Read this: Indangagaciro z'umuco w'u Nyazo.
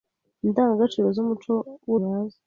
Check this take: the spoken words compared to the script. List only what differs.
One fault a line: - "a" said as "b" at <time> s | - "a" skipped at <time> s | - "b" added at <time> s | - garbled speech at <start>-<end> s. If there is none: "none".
none